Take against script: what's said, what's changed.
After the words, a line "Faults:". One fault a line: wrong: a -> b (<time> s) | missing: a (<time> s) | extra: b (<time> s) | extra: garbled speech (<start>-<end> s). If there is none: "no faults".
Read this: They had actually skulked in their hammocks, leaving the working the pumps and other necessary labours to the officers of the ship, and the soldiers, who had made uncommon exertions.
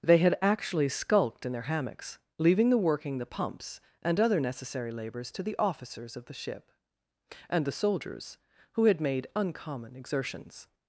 They had actually skulked in their hammocks, leaving the working the pumps and other necessary labours to the officers of the ship, and the soldiers, who had made uncommon exertions.
Faults:
no faults